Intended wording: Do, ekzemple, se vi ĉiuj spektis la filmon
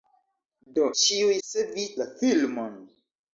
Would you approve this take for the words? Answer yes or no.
no